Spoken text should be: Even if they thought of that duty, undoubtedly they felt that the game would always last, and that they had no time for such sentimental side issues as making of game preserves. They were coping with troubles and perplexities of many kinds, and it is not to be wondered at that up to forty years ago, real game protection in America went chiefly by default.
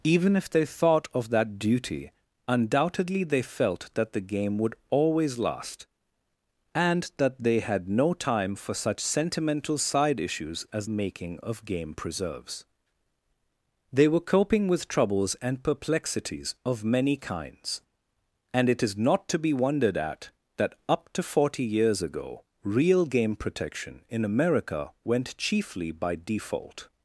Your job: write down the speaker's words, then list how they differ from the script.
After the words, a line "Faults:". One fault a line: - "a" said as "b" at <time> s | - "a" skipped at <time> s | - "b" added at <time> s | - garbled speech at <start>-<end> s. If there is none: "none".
Even if they thought of that duty, undoubtedly they felt that the game would always last, and that they had no time for such sentimental side issues as making of game preserves. They were coping with troubles and perplexities of many kinds, and it is not to be wondered at that up to forty years ago, real game protection in America went chiefly by default.
Faults:
none